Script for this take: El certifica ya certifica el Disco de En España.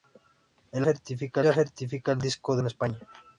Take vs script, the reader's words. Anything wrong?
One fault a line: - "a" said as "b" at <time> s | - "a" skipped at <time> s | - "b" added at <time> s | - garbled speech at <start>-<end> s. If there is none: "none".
none